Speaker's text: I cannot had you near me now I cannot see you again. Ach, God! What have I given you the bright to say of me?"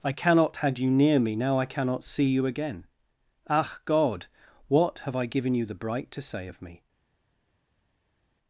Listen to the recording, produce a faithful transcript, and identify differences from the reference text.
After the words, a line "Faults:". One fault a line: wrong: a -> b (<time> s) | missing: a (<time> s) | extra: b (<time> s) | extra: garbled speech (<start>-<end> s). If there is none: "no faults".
I cannot had you near me now I cannot see you again. Ach, God! What have I given you the bright to say of me?"
Faults:
no faults